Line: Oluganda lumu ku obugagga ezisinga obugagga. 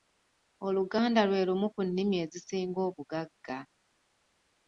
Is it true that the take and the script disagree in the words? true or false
true